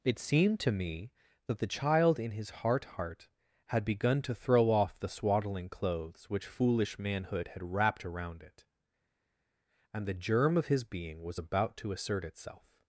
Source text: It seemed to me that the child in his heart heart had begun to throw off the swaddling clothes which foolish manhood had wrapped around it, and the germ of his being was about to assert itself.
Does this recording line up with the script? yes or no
yes